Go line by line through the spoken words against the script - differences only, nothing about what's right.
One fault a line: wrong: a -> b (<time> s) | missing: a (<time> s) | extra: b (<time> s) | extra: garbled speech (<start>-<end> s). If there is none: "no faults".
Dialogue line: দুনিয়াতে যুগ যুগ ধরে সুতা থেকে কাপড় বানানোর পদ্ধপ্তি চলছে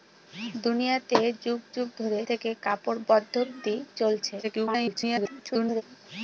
missing: সুতা (2.2 s)
missing: বানানোর (3.0 s)
extra: garbled speech (4.4-5.8 s)